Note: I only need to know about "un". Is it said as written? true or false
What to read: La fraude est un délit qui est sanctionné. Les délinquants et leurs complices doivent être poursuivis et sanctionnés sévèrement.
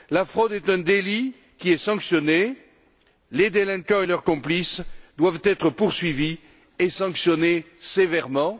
true